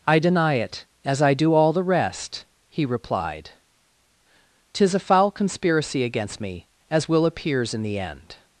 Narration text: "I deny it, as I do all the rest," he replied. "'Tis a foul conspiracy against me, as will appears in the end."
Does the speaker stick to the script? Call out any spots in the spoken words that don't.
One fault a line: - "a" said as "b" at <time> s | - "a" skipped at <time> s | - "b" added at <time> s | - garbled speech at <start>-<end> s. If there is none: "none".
none